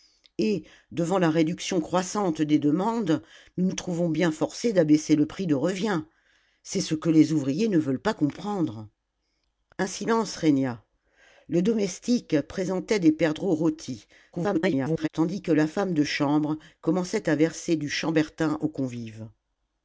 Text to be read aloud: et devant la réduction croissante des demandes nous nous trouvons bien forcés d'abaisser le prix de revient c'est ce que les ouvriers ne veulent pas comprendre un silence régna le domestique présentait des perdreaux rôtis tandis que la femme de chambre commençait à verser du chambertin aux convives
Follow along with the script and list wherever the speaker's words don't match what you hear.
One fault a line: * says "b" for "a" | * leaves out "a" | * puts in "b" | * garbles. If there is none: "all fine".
* garbles